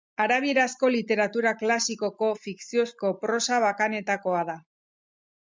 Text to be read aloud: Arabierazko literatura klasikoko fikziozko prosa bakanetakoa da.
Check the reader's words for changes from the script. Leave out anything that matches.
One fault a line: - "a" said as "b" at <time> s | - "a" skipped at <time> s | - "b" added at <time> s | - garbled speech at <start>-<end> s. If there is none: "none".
none